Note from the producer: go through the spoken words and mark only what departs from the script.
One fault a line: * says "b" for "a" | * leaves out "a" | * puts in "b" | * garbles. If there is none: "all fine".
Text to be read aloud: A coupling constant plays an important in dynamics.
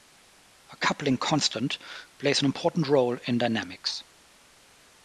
* puts in "role"